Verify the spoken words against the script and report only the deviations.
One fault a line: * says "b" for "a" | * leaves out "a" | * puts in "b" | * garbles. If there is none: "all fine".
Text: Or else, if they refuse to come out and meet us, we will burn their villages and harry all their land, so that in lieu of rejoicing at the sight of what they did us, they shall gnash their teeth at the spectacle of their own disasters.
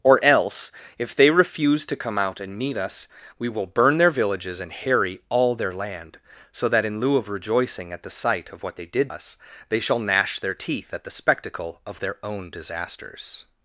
all fine